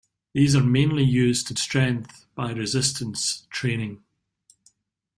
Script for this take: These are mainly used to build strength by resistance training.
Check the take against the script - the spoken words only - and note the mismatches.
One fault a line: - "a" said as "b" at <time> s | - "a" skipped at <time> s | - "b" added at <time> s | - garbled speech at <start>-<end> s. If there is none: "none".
- "build" skipped at 1.5 s